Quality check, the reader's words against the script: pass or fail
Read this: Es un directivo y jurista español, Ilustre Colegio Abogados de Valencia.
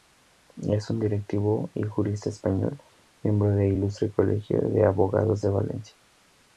fail